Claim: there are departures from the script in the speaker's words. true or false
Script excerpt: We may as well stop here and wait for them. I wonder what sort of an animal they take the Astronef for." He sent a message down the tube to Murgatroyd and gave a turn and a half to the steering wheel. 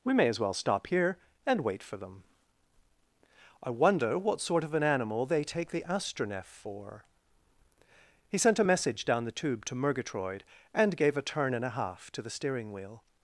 false